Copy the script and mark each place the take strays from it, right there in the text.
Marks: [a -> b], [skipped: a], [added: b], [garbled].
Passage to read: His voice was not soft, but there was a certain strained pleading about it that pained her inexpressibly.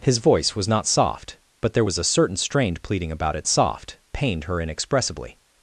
His voice was not soft, but there was a certain strained pleading about it [that -> soft] pained her inexpressibly.